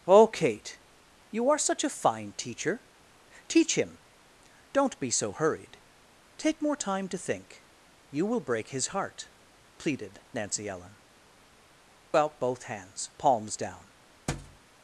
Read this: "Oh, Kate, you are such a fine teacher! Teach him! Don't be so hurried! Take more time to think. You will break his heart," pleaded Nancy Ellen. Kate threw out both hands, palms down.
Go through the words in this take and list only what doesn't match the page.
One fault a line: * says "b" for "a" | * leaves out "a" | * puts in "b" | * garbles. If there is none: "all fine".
* leaves out "Kate threw"